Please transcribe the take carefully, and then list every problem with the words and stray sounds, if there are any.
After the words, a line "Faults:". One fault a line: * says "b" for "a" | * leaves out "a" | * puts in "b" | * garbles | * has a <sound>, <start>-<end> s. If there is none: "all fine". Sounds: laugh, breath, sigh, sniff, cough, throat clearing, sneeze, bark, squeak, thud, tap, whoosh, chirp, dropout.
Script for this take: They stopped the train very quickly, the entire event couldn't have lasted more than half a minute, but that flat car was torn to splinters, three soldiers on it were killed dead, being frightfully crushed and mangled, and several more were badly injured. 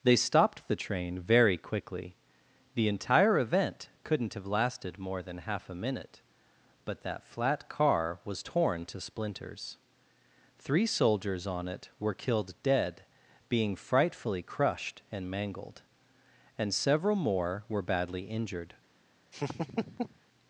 They stopped the train very quickly, the entire event couldn't have lasted more than half a minute, but that flat car was torn to splinters, three soldiers on it were killed dead, being frightfully crushed and mangled, and several more were badly injured.
Faults:
* has a laugh, 19.3-20.2 s